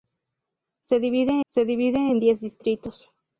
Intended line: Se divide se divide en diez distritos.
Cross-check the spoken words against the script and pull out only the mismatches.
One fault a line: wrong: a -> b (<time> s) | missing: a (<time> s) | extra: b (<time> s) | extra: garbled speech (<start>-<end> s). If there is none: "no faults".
no faults